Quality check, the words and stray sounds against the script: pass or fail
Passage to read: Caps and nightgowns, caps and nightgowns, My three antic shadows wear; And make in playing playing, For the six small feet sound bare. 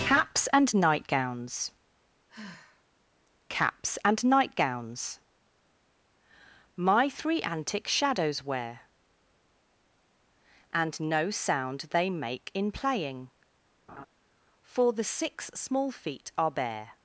fail